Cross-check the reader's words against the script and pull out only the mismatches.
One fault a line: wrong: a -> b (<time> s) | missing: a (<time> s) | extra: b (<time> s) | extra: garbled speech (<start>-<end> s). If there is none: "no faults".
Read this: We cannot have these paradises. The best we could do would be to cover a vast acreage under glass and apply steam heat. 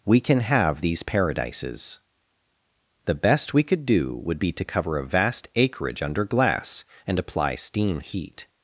wrong: cannot -> can (0.2 s)